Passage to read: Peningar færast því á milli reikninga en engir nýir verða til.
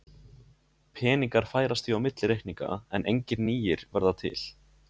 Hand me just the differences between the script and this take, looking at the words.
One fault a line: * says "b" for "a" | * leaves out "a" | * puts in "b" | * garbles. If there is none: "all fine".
all fine